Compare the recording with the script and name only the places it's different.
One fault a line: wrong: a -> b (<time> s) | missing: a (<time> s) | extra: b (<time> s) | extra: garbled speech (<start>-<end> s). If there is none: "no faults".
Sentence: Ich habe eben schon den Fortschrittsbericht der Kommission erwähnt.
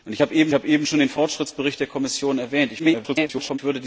extra: habe eben (0.5 s)
extra: garbled speech (2.8-3.6 s)